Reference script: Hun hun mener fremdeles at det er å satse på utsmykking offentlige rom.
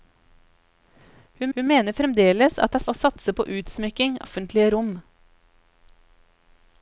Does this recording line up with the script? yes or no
yes